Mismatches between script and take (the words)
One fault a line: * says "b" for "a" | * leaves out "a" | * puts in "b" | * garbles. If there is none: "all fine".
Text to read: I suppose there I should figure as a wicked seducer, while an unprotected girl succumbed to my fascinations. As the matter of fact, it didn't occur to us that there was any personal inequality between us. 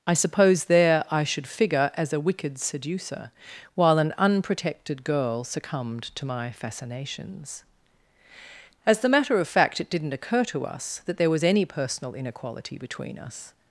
all fine